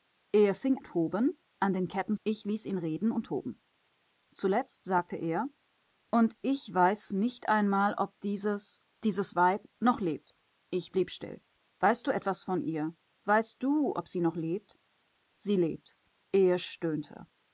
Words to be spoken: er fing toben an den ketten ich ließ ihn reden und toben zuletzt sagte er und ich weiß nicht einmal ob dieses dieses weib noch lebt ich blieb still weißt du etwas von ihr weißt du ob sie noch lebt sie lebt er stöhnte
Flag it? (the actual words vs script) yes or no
no